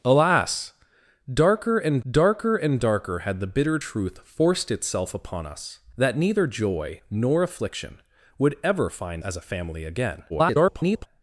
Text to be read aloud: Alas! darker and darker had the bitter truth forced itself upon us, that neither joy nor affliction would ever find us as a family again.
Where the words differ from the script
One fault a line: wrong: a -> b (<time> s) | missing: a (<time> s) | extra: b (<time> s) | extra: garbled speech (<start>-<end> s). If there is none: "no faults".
extra: and darker (2.5 s)
missing: us (9.2 s)
extra: garbled speech (10.3-11.1 s)